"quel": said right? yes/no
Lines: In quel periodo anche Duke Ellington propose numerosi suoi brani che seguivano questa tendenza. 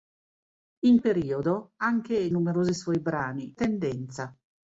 no